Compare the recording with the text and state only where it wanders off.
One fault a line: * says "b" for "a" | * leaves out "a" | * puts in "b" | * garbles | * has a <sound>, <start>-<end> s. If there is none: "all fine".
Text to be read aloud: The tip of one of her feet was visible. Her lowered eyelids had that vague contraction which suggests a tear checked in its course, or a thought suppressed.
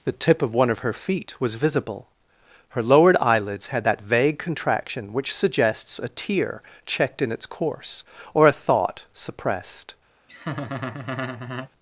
* has a laugh, 10.3-11.7 s